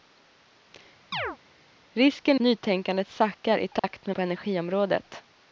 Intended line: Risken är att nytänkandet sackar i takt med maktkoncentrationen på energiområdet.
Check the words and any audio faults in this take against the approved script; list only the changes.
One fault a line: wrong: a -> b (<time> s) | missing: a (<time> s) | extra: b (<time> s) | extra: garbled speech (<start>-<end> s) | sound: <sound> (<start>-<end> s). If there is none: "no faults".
sound: chirp (1.1-1.4 s)
missing: är att (2.4 s)
sound: dropout (3.8-3.8 s)
missing: maktkoncentrationen (4.2 s)